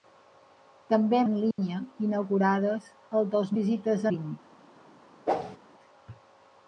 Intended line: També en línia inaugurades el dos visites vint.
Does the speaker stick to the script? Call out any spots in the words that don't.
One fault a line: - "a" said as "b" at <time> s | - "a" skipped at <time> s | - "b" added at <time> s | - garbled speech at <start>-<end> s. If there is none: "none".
none